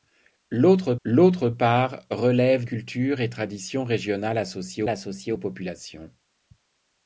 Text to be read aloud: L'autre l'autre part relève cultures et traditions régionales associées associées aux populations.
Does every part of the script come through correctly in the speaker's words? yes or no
yes